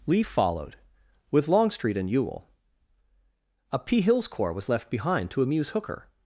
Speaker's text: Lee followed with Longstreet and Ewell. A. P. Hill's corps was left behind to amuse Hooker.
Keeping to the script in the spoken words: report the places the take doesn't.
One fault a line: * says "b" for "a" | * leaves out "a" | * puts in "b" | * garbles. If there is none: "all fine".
all fine